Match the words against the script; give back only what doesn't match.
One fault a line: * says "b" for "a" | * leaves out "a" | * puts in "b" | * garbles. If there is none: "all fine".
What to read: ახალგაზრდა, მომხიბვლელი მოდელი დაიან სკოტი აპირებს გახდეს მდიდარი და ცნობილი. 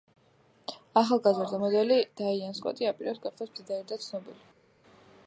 * leaves out "მომხიბვლელი"